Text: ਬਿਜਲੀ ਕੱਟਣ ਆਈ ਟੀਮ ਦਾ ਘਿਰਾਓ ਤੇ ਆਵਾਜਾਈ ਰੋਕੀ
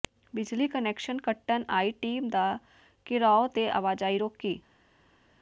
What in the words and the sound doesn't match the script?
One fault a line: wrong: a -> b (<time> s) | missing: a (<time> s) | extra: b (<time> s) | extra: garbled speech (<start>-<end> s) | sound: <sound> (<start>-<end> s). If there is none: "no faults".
extra: ਕੁਨੈਕਸ਼ਨ (0.7 s)